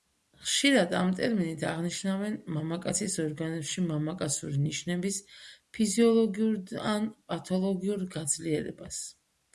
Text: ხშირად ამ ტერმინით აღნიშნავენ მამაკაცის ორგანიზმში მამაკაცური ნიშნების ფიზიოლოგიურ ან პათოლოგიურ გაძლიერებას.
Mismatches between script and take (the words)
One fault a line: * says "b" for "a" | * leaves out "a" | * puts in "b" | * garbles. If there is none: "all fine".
all fine